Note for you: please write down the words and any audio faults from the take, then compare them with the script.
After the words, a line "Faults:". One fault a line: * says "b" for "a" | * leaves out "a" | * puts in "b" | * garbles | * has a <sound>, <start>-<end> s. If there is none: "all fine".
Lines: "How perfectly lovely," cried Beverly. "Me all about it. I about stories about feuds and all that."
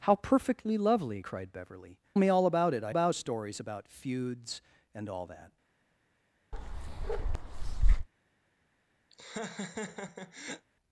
"How perfectly lovely," cried Beverly. "Me all about it. I about stories about feuds and all that."
Faults:
* has a bark, 6.5-8.1 s
* has a laugh, 9.1-10.7 s